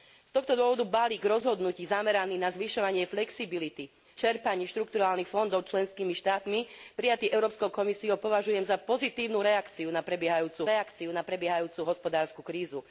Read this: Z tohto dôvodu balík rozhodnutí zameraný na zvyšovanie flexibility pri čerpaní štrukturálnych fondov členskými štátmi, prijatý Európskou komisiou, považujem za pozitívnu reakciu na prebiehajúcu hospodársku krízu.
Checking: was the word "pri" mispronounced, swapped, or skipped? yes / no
yes